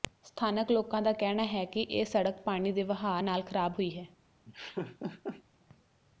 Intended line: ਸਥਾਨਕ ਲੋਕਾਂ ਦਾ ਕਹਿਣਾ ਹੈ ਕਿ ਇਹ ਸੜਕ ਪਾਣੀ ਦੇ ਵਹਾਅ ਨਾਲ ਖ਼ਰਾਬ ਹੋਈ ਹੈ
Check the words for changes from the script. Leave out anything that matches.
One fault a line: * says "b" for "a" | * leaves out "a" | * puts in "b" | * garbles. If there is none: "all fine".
all fine